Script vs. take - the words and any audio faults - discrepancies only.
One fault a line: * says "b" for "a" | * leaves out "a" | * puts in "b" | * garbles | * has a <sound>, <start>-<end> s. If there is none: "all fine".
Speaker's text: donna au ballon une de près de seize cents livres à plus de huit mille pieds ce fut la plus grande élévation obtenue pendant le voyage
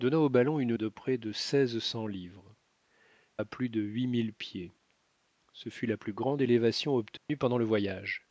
* has a dropout, 7.2-7.3 s